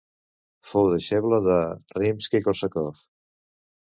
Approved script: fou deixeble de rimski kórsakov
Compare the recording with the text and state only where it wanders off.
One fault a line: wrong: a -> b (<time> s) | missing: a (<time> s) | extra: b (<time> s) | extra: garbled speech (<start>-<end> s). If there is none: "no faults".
no faults